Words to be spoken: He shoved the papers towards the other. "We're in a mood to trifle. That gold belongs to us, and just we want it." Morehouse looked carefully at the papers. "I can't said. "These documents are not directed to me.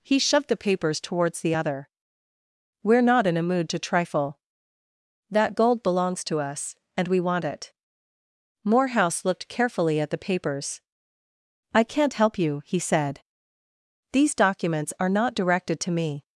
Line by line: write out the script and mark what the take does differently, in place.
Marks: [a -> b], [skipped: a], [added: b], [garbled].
He shoved the papers towards the other. "We're [added: not] in a mood to trifle. That gold belongs to us, and [skipped: just] we want it." Morehouse looked carefully at the papers. "I can't [added: help you he] said. "These documents are not directed to me.